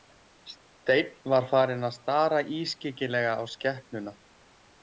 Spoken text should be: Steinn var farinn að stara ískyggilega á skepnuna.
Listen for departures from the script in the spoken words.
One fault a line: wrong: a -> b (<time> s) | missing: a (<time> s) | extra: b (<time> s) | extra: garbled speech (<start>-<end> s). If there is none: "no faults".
no faults